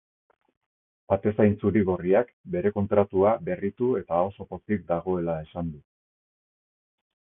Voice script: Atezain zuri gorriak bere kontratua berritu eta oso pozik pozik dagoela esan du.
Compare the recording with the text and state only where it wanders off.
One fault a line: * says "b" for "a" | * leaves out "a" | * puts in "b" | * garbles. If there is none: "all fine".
* leaves out "pozik"